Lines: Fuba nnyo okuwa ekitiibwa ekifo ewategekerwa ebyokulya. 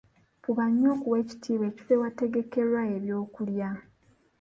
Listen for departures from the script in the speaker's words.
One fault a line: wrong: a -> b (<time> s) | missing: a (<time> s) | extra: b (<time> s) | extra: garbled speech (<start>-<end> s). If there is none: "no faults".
no faults